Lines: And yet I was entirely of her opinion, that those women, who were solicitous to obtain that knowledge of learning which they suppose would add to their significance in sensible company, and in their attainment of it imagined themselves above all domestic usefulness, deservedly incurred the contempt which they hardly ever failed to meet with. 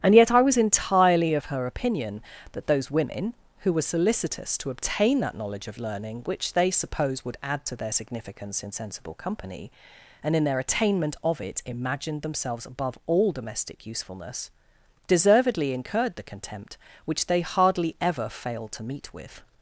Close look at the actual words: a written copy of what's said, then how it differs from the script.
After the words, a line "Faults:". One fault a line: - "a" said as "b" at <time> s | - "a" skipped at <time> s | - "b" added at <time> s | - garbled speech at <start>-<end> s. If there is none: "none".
And yet I was entirely of her opinion, that those women, who were solicitous to obtain that knowledge of learning which they suppose would add to their significance in sensible company, and in their attainment of it imagined themselves above all domestic usefulness, deservedly incurred the contempt which they hardly ever failed to meet with.
Faults:
none